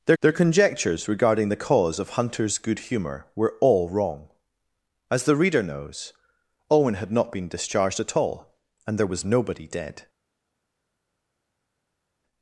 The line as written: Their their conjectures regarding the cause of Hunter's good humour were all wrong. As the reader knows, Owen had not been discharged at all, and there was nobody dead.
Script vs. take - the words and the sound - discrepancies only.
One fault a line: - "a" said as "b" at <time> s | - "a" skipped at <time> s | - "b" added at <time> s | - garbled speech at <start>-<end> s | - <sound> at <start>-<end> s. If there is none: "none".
none